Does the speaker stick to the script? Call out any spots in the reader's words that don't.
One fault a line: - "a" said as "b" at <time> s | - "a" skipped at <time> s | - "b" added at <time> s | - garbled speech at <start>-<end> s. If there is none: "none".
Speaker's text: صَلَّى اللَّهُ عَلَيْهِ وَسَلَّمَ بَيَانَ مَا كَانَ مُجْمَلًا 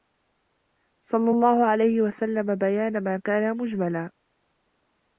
none